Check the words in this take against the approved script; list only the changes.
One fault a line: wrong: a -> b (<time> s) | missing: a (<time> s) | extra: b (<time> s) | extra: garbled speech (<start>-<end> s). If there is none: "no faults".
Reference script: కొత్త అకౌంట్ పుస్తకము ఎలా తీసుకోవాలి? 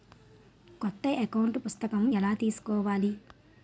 no faults